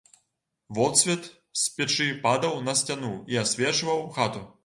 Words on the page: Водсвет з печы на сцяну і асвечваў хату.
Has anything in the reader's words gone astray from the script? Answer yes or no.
yes